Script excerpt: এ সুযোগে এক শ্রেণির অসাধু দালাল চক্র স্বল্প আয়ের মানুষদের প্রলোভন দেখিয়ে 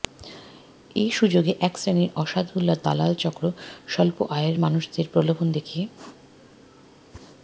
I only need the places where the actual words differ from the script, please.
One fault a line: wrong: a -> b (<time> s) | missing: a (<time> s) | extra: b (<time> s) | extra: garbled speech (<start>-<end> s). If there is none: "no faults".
no faults